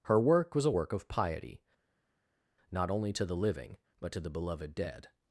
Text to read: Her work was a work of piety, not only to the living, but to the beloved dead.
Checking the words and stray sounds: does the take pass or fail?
pass